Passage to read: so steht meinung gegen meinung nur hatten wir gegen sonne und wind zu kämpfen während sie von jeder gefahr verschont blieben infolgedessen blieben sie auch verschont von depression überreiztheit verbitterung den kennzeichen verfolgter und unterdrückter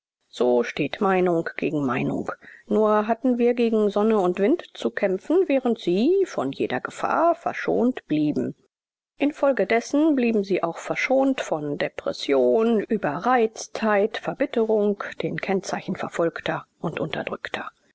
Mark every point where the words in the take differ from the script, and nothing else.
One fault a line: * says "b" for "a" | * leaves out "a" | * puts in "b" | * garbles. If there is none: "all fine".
all fine